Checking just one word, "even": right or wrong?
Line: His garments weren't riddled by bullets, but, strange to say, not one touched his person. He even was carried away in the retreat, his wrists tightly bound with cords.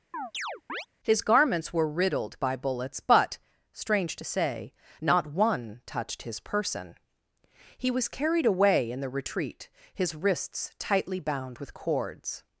wrong